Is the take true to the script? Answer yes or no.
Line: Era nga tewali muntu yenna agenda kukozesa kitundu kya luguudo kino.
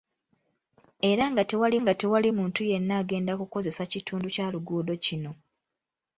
no